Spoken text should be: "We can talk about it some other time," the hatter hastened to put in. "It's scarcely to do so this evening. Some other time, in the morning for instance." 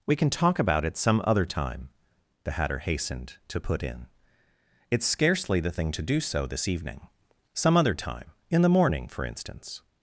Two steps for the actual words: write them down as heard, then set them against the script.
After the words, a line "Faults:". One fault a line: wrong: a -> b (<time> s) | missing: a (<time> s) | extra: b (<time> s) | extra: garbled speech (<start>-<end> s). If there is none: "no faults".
"We can talk about it some other time," the hatter hastened to put in. "It's scarcely the thing to do so this evening. Some other time, in the morning for instance."
Faults:
extra: the thing (5.6 s)